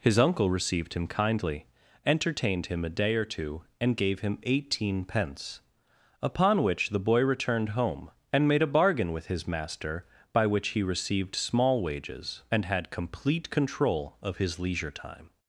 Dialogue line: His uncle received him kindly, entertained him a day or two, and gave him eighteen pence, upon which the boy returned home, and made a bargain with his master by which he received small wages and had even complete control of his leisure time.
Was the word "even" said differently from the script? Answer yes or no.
yes